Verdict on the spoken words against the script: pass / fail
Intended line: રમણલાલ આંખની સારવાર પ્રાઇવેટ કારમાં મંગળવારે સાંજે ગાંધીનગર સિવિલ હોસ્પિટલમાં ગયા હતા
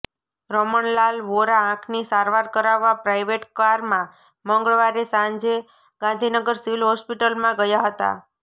fail